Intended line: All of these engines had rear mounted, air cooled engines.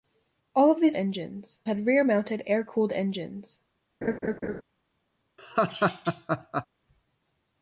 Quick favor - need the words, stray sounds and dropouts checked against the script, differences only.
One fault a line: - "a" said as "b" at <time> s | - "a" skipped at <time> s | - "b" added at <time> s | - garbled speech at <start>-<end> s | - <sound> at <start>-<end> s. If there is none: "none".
- laugh at 4.0-4.6 s
- laugh at 5.4-6.7 s